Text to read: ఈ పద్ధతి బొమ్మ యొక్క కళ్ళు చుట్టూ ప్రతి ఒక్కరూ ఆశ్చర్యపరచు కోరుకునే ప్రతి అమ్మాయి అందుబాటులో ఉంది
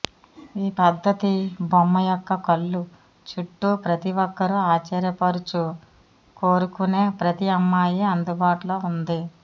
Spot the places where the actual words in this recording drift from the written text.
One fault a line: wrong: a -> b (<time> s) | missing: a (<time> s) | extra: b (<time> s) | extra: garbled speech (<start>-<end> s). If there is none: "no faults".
no faults